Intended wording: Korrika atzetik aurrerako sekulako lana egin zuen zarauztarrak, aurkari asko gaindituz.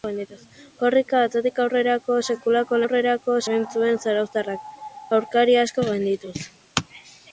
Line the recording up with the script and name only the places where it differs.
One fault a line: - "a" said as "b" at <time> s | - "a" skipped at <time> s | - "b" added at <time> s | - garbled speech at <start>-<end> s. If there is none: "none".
- "lana" said as "aurrerako" at 2.8 s